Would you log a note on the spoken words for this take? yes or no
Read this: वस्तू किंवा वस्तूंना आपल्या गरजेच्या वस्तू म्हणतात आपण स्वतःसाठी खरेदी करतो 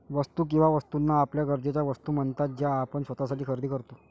yes